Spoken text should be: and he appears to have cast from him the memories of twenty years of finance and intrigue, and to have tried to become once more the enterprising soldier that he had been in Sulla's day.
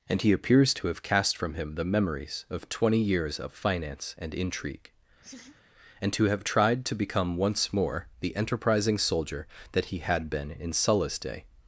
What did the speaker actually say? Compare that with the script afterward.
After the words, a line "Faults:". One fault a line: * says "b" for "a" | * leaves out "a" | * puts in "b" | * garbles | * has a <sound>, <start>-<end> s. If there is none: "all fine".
and he appears to have cast from him the memories of twenty years of finance and intrigue, and to have tried to become once more the enterprising soldier that he had been in Sulla's day.
Faults:
* has a laugh, 5.2-5.6 s